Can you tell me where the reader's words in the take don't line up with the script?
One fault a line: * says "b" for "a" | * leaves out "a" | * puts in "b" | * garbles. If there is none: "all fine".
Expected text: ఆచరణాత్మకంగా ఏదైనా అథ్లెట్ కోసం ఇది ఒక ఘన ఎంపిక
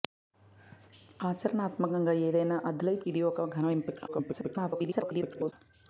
* leaves out "కోసం"
* garbles